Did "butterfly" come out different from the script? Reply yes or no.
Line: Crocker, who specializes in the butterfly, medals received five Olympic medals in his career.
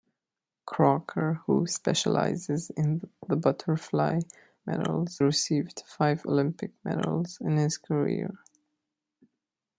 no